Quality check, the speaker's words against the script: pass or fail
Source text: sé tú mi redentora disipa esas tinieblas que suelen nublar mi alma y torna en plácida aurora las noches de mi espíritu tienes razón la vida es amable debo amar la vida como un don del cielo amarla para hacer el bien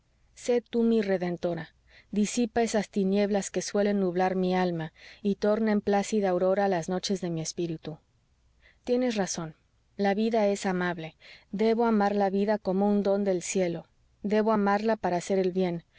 fail